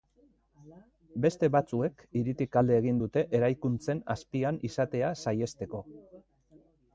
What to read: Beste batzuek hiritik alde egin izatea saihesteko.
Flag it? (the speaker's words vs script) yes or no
yes